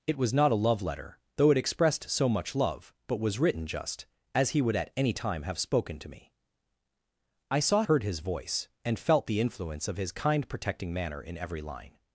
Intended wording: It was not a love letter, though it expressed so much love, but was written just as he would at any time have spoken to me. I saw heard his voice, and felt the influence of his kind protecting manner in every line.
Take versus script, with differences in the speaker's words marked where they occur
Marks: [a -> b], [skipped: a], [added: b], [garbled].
It was not a love letter, though it expressed so much love, but was written just as he would at any time have spoken to me. I saw heard his voice, and felt the influence of his kind protecting manner in every line.